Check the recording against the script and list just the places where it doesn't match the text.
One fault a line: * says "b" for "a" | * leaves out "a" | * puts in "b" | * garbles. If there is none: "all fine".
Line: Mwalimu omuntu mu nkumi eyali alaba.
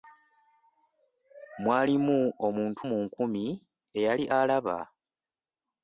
all fine